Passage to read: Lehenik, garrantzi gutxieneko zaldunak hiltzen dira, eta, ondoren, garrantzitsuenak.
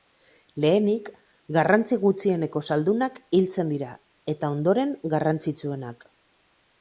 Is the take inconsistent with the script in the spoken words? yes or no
no